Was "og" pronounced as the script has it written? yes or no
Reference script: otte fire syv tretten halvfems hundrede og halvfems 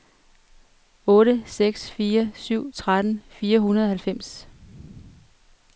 yes